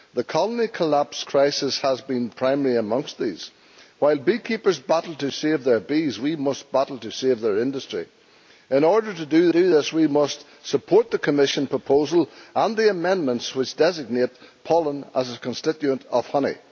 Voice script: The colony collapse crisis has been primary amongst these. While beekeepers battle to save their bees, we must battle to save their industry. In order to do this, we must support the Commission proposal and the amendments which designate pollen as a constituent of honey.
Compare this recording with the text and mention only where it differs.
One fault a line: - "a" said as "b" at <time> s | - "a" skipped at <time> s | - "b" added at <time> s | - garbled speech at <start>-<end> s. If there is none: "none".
- "do" added at 9.5 s